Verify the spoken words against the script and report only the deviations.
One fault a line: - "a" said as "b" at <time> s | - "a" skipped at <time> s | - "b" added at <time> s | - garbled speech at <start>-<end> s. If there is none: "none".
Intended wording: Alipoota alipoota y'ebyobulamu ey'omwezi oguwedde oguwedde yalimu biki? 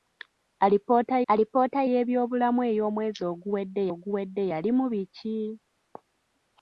none